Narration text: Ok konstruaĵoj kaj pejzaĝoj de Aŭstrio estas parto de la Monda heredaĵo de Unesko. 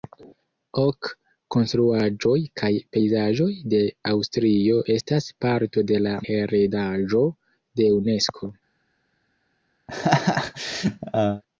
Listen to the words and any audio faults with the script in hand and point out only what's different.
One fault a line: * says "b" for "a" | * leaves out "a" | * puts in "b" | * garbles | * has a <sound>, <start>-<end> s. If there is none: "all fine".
* leaves out "Monda"
* has a laugh, 9.9-11.4 s